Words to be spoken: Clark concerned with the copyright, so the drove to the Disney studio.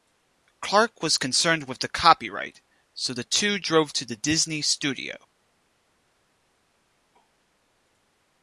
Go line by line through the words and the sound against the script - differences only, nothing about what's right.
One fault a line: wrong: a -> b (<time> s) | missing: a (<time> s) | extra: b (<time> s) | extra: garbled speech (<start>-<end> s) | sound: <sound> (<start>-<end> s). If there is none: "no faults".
extra: was (1.0 s)
extra: two (3.2 s)